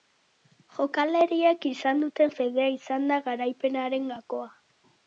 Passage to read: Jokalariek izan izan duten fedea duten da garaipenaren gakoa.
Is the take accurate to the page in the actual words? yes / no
no